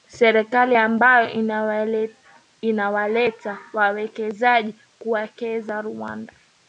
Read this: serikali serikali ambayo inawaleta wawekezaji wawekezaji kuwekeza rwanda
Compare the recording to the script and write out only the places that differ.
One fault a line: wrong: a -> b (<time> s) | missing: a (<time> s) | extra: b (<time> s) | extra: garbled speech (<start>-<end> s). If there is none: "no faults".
missing: serikali (0.8 s)
missing: wawekezaji (4.7 s)